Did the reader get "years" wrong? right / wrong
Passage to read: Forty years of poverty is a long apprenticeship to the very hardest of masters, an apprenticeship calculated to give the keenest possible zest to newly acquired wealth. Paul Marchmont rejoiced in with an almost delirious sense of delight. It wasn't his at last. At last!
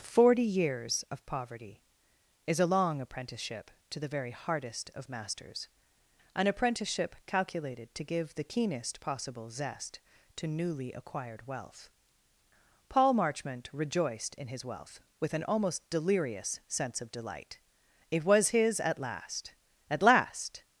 right